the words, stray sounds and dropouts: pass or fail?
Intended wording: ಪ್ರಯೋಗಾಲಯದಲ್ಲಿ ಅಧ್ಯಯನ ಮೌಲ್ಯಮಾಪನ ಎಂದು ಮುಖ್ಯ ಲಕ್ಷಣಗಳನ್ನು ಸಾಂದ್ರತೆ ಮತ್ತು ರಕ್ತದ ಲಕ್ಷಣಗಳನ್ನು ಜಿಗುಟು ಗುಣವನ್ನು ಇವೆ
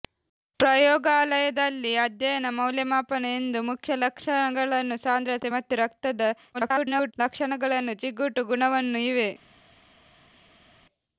fail